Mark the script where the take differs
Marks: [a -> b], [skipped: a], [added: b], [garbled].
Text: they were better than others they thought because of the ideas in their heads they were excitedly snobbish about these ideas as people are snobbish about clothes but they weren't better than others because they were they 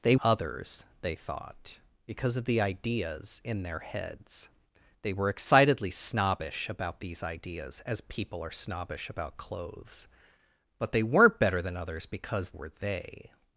they [skipped: were better than] others they thought because of the ideas in their heads they were excitedly snobbish about these ideas as people are snobbish about clothes but they weren't better than others because [skipped: they] were they